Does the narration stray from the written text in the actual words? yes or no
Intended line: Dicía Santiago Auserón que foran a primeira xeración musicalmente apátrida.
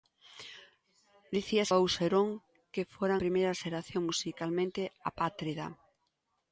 yes